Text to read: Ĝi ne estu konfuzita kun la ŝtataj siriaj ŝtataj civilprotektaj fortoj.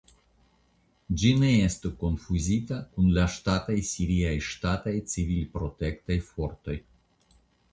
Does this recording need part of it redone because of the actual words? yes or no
no